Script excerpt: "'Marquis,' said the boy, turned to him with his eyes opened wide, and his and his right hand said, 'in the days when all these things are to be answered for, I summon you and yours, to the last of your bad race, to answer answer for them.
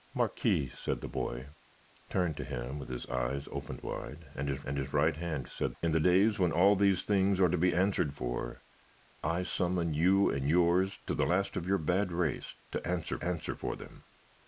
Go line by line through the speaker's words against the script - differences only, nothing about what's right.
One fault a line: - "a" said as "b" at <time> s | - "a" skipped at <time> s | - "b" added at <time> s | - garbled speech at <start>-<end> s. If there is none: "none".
none